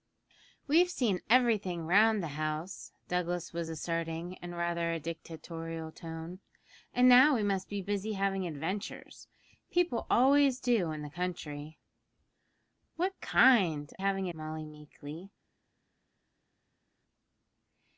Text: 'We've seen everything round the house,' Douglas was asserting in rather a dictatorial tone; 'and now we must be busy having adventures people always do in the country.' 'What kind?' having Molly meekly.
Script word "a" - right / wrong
right